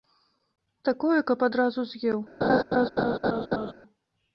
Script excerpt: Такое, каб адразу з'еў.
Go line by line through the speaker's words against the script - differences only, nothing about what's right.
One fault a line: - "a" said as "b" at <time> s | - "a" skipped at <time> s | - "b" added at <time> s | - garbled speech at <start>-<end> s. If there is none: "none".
none